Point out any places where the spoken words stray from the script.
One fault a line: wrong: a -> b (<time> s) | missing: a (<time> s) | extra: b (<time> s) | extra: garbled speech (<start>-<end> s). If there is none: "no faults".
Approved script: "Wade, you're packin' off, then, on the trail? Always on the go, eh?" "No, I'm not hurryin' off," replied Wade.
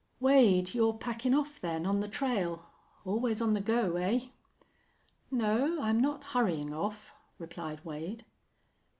no faults